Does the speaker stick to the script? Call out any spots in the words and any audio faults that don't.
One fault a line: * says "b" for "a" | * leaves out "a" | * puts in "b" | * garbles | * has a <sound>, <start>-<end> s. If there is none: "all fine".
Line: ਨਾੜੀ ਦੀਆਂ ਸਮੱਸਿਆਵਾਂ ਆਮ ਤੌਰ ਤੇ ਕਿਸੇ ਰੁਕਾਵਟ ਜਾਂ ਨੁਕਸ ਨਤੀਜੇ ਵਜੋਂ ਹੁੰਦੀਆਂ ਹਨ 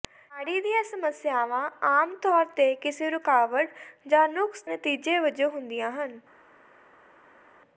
all fine